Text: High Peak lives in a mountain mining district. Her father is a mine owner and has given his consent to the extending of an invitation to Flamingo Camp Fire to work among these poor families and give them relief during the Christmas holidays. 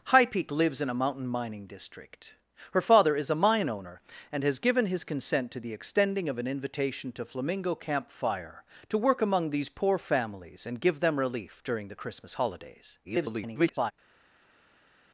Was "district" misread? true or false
false